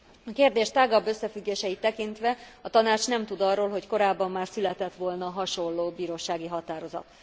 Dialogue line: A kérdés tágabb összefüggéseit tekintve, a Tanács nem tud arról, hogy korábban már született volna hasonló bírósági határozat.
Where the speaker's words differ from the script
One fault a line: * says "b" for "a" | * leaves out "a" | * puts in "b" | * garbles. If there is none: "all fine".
all fine